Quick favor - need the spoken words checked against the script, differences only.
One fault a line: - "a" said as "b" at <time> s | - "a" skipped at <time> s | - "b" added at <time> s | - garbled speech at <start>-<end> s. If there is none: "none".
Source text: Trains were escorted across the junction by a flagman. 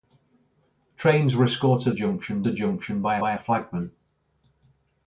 - "across" said as "junction" at 1.9 s
- "by" added at 3.2 s